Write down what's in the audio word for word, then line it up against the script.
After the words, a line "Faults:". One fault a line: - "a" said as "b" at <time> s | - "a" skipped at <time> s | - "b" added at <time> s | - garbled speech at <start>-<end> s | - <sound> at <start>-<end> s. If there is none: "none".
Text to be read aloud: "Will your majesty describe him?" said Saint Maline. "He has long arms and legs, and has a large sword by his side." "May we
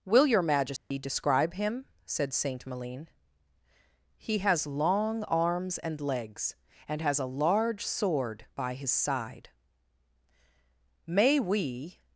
"Will your majesty describe him?" said Saint Maline. "He has long arms and legs, and has a large sword by his side." "May we
Faults:
- dropout at 0.8-0.9 s